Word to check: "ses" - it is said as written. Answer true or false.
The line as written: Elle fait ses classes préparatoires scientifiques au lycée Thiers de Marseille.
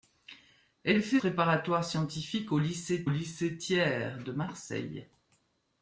false